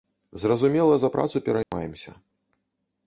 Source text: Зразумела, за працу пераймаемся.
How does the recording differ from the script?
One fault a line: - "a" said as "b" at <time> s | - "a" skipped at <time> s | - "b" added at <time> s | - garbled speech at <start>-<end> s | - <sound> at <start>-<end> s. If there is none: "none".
- dropout at 1.6-1.7 s